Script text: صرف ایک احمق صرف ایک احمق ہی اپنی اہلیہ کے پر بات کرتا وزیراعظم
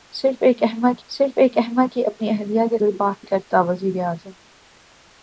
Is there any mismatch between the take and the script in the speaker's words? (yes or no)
no